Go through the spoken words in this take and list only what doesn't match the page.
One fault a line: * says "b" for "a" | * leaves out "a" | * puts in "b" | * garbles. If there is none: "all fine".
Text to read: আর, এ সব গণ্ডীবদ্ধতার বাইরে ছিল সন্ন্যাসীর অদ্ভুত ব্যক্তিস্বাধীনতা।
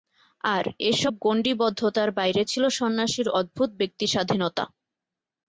all fine